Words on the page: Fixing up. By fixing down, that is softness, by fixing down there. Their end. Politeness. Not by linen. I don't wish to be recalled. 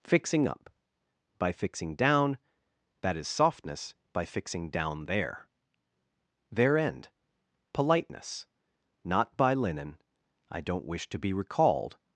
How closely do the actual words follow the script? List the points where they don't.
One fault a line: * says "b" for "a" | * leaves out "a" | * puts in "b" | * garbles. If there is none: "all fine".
all fine